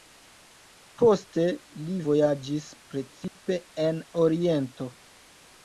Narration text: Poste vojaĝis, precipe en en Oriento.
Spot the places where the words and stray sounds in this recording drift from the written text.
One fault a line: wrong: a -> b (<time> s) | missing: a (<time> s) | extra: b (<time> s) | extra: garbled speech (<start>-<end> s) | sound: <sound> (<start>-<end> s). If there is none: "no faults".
extra: li (1.8 s)
sound: dropout (3.3-3.4 s)
missing: en (4.0 s)